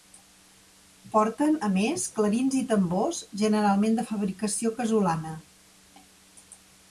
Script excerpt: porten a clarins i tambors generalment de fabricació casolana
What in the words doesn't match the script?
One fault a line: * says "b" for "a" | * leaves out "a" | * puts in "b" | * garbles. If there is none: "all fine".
* puts in "més"